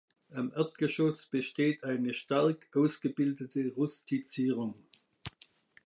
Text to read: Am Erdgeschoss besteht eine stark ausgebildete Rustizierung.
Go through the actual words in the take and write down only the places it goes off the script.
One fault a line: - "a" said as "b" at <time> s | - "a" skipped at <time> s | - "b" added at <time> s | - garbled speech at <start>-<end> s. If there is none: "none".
none